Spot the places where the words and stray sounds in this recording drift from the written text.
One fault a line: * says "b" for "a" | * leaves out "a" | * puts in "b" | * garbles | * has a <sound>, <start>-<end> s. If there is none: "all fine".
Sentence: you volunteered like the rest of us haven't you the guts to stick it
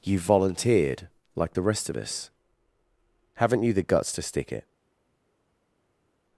all fine